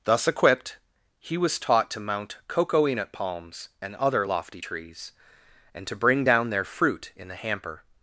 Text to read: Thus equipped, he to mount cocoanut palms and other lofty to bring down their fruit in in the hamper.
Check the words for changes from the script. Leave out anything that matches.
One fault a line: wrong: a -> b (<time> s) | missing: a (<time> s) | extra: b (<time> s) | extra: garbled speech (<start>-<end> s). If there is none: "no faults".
extra: was taught (1.4 s)
extra: trees and (4.6 s)
missing: in (7.3 s)